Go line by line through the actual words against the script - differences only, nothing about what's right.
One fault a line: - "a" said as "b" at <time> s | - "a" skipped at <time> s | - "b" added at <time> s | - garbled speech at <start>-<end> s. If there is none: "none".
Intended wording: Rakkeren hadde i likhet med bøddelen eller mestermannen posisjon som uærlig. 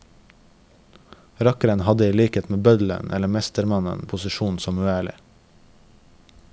none